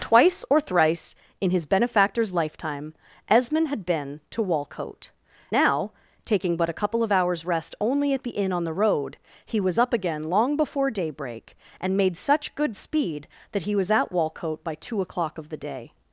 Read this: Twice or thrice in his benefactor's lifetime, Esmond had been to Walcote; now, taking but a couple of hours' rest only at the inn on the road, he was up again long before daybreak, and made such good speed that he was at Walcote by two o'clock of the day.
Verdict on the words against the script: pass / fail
pass